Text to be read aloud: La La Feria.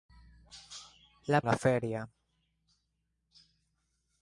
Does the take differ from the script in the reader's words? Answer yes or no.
no